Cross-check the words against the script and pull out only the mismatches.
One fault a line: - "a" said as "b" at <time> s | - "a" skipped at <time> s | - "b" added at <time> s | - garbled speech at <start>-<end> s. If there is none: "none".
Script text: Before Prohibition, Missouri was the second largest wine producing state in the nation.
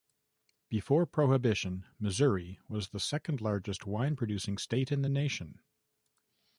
none